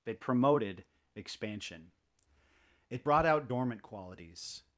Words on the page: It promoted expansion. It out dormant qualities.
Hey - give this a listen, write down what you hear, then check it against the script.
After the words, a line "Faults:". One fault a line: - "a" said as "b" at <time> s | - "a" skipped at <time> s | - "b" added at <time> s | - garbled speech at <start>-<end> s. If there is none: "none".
It promoted expansion. It brought out dormant qualities.
Faults:
- "brought" added at 3.0 s